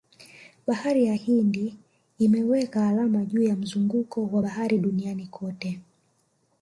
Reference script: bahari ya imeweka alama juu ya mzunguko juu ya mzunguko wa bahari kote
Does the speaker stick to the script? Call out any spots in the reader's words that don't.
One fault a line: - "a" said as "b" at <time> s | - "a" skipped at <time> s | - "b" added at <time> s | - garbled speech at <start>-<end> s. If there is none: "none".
- "hindi" added at 1.1 s
- "juu ya mzunguko" skipped at 4.3 s
- "duniani" added at 4.8 s